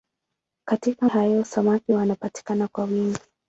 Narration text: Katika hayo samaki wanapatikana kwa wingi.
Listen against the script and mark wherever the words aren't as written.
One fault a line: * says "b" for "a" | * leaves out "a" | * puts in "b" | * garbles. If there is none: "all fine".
all fine